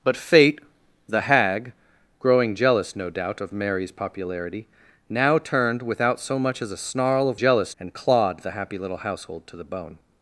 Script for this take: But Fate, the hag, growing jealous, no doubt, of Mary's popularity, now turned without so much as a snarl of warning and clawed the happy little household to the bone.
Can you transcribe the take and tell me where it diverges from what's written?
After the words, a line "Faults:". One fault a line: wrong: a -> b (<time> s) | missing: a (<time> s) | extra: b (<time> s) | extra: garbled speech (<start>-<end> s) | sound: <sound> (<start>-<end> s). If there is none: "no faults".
But Fate, the hag, growing jealous, no doubt, of Mary's popularity, now turned without so much as a snarl of jealous and clawed the happy little household to the bone.
Faults:
wrong: warning -> jealous (7.4 s)